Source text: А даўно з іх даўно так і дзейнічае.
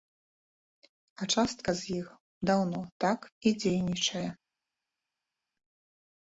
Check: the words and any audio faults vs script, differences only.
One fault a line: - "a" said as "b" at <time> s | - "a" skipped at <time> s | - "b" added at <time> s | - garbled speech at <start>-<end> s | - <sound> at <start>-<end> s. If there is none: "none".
- "даўно" said as "частка" at 1.3 s